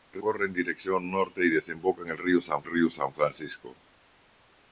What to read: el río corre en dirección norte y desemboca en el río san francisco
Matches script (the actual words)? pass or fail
fail